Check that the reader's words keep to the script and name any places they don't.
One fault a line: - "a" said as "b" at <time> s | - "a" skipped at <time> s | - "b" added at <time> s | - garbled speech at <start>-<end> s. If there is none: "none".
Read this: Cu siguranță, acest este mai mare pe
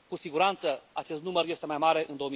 - "număr" added at 1.2 s
- "pe" said as "în" at 2.1 s